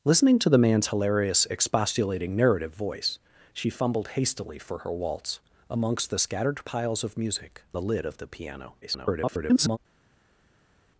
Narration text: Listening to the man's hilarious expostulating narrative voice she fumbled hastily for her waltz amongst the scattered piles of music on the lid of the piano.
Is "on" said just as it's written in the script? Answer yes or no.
no